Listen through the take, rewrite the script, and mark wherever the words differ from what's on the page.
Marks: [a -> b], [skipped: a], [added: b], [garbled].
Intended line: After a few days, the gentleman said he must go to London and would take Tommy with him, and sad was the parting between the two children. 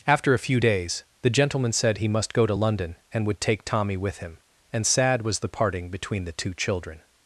After a few days, the gentleman said he must go to London and would take Tommy with him, and sad was the parting between the two children.